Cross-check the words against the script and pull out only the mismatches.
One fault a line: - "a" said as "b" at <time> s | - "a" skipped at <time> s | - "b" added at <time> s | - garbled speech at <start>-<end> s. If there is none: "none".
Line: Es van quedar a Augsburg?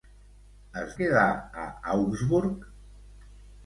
- "van" skipped at 0.9 s